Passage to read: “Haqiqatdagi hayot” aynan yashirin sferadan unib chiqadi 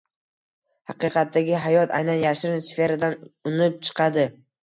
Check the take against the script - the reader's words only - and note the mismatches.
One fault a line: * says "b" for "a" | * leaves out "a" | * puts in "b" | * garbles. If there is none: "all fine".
all fine